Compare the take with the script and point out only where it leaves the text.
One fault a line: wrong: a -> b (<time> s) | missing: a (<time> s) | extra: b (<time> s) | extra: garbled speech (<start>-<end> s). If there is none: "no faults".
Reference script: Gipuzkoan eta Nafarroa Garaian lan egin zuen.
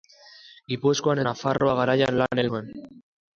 missing: eta (1.2 s)
missing: egin (2.5 s)